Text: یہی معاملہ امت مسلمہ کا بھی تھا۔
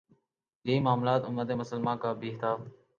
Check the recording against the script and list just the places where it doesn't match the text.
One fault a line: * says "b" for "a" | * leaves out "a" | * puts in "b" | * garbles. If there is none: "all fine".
all fine